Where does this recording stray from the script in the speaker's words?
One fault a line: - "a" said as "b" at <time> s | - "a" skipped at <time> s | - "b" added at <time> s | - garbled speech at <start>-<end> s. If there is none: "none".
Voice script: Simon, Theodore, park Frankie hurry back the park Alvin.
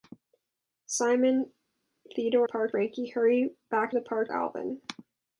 none